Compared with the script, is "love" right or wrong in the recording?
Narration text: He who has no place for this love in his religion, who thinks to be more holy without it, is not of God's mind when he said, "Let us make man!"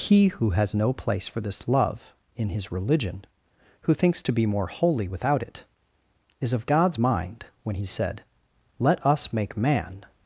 right